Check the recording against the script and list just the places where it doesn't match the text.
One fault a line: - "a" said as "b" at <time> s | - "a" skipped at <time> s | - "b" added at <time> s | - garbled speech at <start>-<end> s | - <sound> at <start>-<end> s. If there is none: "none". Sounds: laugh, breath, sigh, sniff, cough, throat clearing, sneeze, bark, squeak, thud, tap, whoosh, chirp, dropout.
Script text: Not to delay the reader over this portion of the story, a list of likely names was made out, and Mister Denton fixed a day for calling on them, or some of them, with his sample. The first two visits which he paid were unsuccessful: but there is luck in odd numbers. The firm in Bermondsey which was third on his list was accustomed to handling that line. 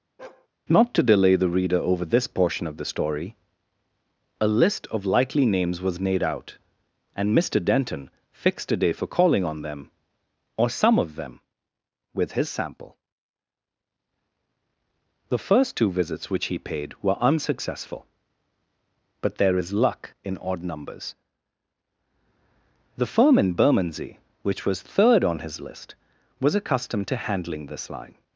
- bark at 0.2-0.5 s
- "that" said as "this" at 27.7 s